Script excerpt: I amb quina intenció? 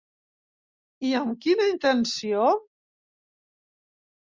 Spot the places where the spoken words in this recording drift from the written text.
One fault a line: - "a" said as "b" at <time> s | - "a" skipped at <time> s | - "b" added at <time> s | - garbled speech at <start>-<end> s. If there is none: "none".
none